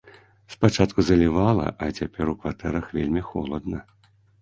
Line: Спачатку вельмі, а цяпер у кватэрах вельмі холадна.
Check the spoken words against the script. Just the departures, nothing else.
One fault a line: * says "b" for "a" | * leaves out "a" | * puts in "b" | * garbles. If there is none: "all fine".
* says "залівала" for "вельмі"